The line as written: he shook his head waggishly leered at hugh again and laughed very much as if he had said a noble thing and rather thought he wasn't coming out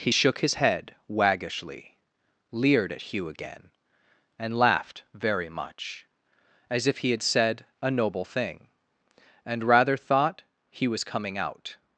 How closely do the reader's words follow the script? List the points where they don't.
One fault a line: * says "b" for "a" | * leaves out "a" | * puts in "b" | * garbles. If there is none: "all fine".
* says "was" for "wasn't"